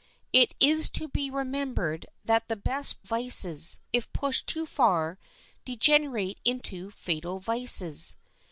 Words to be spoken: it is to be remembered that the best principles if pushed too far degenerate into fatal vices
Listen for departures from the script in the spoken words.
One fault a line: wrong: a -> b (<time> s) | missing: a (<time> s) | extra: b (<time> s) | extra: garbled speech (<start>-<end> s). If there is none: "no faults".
wrong: principles -> vices (3.0 s)